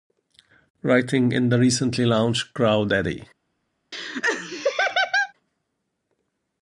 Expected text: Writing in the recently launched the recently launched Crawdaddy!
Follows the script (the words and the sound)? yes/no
no